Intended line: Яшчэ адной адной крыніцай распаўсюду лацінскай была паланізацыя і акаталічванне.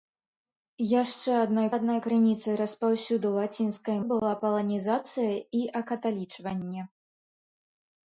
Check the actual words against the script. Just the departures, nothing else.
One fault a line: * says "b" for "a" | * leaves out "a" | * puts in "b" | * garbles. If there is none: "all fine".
all fine